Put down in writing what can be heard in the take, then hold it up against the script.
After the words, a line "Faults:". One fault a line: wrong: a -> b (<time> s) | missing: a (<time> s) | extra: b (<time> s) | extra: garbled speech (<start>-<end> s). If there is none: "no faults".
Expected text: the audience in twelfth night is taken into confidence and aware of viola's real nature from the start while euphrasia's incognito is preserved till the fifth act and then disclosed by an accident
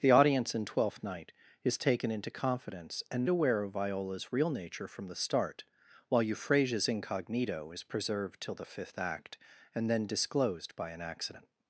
the audience in twelfth night is taken into confidence and aware of viola's real nature from the start while euphrasia's incognito is preserved till the fifth act and then disclosed by an accident
Faults:
no faults